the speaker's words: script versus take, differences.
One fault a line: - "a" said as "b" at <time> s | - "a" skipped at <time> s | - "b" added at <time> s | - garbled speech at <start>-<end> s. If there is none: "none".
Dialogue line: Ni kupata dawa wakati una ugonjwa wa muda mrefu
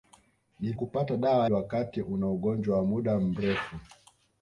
none